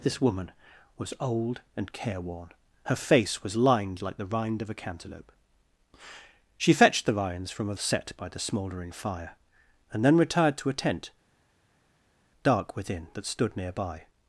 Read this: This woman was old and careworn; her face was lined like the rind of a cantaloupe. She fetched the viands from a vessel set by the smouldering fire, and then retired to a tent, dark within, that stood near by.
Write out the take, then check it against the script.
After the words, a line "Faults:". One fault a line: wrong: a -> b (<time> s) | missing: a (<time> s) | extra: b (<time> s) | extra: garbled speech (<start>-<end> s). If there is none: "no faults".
This woman was old and careworn; her face was lined like the rind of a cantaloupe. She fetched the viands from a set by the smouldering fire, and then retired to a tent, dark within, that stood near by.
Faults:
missing: vessel (7.7 s)